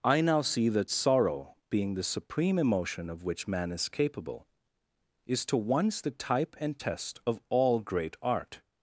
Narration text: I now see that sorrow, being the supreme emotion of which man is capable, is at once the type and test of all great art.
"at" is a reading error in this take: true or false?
true